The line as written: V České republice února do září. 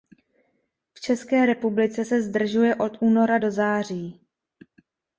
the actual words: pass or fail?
fail